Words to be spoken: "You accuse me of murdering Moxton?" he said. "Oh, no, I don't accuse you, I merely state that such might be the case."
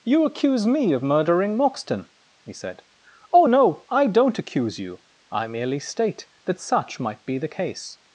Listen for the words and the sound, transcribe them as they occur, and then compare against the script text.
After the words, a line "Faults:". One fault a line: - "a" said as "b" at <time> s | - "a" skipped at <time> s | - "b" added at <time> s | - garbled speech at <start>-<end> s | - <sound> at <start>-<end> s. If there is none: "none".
"You accuse me of murdering Moxton?" he said. "Oh, no, I don't accuse you, I merely state that such might be the case."
Faults:
none